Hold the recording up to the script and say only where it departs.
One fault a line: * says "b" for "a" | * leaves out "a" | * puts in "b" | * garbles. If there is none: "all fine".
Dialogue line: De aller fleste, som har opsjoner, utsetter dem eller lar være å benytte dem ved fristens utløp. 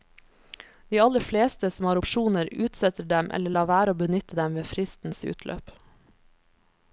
all fine